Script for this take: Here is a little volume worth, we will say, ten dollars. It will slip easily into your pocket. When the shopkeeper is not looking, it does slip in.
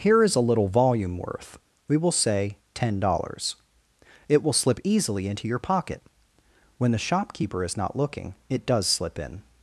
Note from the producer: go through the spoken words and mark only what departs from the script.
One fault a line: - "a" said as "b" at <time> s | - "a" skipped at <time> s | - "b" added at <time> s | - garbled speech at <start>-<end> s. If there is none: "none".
none